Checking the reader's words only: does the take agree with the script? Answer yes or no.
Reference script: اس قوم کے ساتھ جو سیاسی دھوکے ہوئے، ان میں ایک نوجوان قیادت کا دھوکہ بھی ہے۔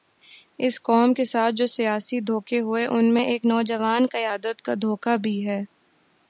yes